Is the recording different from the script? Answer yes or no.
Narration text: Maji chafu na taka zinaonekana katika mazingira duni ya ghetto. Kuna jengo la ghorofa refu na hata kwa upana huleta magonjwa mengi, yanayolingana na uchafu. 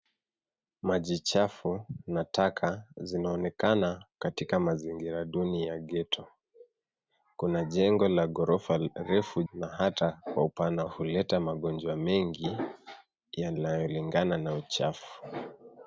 no